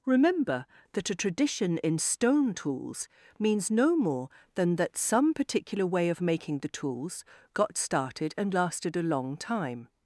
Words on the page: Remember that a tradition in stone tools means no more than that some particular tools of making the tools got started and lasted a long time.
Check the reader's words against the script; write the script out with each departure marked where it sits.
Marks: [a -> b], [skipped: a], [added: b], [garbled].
Remember that a tradition in stone tools means no more than that some particular [tools -> way] of making the tools got started and lasted a long time.